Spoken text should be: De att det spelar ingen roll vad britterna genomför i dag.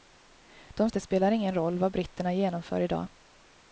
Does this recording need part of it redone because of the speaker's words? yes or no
no